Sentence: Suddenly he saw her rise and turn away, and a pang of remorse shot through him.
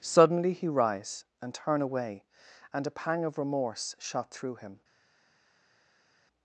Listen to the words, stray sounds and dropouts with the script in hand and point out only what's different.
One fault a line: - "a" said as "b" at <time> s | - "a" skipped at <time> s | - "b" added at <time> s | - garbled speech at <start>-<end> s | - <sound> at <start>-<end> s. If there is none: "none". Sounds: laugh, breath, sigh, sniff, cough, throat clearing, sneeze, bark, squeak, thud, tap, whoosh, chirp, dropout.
- "saw her" skipped at 0.7 s